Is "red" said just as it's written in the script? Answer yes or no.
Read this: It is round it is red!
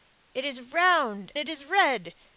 yes